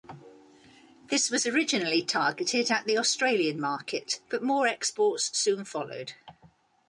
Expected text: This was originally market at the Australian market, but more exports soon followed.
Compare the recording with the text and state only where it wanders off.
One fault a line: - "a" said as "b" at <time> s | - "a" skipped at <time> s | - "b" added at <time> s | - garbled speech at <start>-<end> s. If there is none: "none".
- "market" said as "targeted" at 2.0 s